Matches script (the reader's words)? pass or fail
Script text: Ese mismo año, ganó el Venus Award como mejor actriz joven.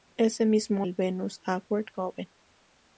fail